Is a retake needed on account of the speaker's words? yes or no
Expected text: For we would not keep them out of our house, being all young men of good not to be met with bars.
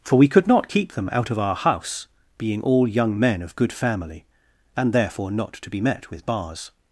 yes